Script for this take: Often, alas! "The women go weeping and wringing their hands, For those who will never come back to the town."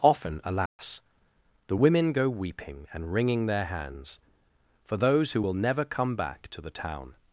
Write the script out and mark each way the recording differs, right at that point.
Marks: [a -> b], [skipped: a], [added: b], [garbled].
Often, alas! "The women go weeping and wringing their hands, For those who will never come back to the town."